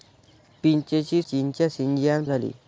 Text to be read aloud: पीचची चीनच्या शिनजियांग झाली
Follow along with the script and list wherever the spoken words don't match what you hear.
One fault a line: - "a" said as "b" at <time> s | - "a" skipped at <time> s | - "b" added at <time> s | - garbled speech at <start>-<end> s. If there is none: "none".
none